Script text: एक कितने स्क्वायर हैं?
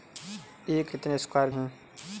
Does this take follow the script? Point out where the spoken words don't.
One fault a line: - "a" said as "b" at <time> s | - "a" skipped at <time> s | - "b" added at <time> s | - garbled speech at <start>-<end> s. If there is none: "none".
none